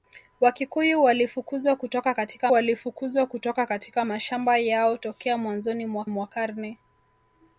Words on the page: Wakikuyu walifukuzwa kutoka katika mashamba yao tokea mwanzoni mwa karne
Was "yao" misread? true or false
false